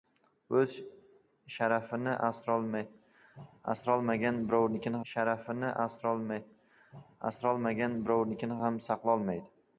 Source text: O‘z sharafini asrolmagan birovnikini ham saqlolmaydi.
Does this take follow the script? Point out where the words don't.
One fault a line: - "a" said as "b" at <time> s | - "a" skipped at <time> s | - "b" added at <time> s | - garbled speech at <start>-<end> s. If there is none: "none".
- "sharafini asrolmagan birovnikini" added at 5.1 s